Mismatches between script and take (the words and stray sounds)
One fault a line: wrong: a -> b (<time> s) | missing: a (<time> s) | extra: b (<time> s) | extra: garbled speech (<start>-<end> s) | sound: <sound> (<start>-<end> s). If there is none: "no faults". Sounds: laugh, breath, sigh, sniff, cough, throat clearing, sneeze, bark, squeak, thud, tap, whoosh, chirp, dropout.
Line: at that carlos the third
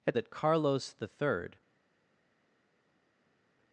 no faults